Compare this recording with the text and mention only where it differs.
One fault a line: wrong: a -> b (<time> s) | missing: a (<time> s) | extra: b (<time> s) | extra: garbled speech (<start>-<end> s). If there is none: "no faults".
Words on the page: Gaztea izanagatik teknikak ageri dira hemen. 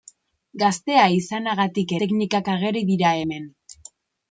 no faults